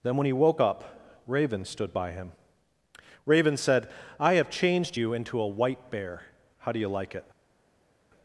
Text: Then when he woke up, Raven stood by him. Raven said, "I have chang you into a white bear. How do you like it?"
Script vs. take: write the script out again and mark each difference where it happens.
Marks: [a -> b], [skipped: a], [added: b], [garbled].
Then when he woke up, Raven stood by him. Raven said, "I have [chang -> changed] you into a white bear. How do you like it?"